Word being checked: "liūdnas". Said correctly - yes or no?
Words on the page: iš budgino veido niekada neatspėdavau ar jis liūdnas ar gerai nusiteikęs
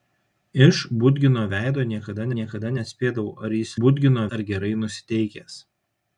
no